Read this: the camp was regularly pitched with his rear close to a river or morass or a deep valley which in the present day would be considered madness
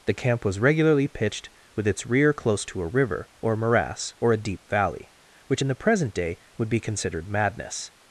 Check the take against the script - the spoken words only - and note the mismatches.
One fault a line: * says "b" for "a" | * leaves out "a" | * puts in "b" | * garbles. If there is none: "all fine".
* says "its" for "his"